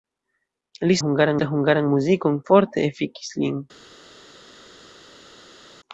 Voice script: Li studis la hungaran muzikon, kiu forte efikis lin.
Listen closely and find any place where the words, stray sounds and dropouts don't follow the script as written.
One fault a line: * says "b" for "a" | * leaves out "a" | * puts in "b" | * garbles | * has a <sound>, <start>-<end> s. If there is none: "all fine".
* says "hungaran" for "studis"
* leaves out "kiu"